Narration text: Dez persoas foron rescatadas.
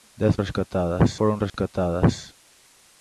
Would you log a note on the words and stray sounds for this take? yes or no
yes